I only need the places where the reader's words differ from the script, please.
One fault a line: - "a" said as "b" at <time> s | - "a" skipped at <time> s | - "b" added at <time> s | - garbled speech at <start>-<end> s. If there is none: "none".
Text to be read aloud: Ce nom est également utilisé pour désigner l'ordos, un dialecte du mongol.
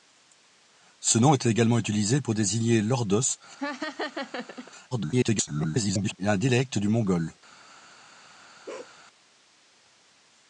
- garbled speech at 4.9-6.2 s